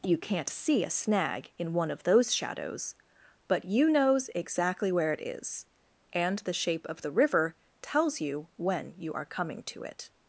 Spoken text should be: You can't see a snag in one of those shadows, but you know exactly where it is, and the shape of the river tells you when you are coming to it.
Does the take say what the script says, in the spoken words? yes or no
no